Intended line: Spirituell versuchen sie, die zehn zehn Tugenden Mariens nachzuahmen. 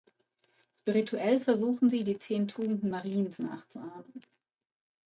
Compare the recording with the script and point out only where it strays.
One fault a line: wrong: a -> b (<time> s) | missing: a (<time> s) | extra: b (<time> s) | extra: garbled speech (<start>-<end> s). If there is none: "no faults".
missing: zehn (2.5 s)